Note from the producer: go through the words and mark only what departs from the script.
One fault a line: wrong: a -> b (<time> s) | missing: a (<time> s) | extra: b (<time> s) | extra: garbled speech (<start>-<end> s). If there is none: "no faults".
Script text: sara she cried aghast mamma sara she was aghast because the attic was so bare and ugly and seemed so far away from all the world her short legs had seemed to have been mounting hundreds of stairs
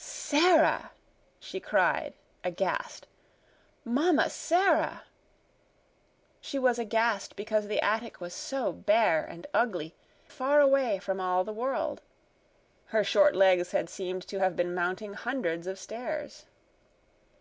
missing: and seemed so (9.9 s)